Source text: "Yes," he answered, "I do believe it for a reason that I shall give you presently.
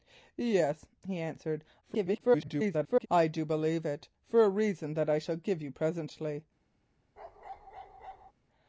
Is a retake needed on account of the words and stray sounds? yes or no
yes